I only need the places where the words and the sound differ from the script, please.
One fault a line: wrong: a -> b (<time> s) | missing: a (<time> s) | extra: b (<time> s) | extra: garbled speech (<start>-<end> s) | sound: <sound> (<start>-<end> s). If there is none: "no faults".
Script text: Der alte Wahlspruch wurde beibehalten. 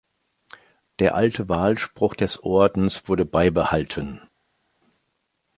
extra: des Ordens (2.1 s)